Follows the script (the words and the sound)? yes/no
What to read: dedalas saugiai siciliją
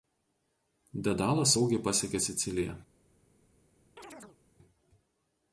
no